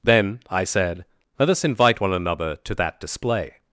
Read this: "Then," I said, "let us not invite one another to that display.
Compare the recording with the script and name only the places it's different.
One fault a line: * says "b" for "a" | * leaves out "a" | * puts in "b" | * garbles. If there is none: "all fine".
* leaves out "not"